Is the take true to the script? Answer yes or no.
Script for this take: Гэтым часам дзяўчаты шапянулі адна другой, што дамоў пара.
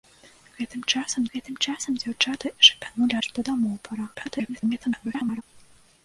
no